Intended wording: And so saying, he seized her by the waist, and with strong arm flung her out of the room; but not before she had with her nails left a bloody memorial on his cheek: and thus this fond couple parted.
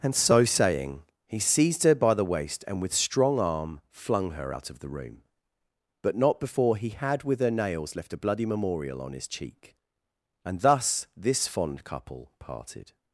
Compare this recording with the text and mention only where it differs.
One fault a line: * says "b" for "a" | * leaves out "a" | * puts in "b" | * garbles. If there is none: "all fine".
* says "he" for "she"